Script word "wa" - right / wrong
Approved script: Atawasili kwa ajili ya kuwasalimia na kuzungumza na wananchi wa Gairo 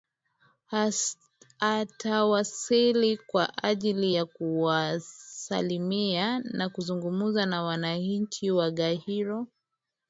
right